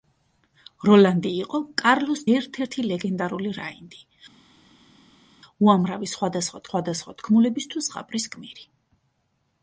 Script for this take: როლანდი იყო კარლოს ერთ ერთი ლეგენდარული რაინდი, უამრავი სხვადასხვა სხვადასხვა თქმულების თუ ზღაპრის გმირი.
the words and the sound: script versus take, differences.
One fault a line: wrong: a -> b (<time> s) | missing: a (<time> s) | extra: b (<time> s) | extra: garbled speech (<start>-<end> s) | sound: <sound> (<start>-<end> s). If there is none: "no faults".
no faults